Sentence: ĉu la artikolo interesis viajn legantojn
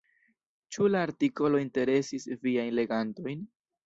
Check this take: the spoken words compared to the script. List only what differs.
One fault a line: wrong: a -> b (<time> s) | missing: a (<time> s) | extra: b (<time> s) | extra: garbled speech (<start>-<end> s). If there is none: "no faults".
no faults